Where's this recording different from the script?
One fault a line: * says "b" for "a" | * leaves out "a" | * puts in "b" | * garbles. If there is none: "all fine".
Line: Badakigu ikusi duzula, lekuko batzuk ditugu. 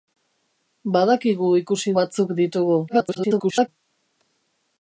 * leaves out "duzula lekuko"
* garbles